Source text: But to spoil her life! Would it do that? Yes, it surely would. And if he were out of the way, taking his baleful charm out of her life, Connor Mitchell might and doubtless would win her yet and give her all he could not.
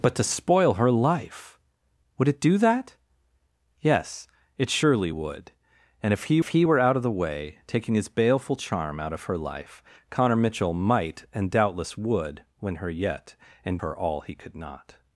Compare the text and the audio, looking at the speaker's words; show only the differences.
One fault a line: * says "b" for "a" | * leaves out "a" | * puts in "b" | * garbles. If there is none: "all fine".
* puts in "if he"
* leaves out "give"